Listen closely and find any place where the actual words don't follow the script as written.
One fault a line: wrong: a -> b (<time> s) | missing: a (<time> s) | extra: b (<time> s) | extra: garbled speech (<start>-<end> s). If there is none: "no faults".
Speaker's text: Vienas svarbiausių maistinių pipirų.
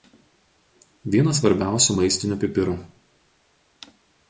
no faults